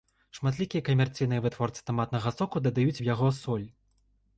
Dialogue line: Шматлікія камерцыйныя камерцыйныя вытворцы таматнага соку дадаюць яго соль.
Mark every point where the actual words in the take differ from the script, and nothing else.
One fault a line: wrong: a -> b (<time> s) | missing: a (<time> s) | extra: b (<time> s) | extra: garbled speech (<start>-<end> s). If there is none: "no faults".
missing: камерцыйныя (1.4 s)
extra: у (3.0 s)